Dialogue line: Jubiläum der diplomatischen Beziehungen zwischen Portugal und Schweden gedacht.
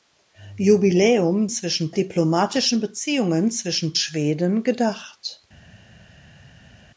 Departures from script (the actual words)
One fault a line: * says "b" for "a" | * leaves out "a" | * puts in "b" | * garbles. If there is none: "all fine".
* says "zwischen" for "der"
* leaves out "Portugal und"